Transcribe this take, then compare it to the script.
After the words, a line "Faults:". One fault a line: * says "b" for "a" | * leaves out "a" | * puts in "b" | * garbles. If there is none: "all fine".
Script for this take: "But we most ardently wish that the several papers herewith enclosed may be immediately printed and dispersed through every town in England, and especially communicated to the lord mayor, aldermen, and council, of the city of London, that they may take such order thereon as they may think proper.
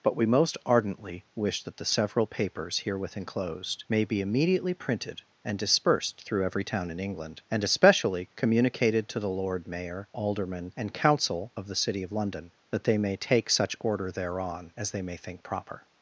"But we most ardently wish that the several papers herewith enclosed may be immediately printed and dispersed through every town in England, and especially communicated to the lord mayor, aldermen, and council, of the city of London, that they may take such order thereon as they may think proper.
Faults:
all fine